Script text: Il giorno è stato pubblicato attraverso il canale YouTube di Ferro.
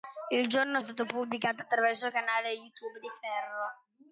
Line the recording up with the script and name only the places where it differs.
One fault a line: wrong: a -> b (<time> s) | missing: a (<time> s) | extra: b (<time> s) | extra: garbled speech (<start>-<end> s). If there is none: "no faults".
no faults